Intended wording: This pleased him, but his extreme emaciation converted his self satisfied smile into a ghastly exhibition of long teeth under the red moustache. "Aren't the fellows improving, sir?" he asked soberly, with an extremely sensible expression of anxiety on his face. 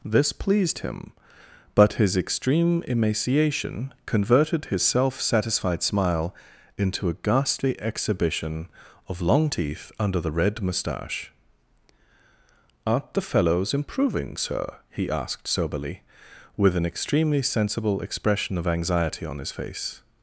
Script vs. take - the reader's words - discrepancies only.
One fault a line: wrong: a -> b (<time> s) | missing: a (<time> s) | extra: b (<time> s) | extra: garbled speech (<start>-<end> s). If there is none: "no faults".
no faults